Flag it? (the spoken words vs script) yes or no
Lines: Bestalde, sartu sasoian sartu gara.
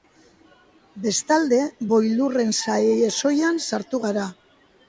yes